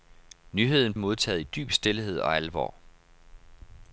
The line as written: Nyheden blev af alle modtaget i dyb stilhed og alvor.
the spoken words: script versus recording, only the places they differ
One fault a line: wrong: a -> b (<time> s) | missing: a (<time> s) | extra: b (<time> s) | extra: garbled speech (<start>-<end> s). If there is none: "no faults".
missing: blev af alle (0.9 s)